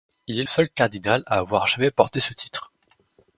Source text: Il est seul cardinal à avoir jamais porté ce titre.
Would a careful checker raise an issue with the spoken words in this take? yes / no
no